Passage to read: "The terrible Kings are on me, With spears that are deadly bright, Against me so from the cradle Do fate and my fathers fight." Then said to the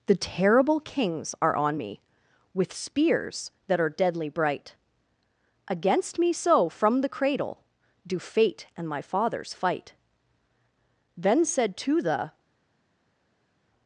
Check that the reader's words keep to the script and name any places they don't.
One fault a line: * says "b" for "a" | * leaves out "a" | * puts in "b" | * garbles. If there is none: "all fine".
all fine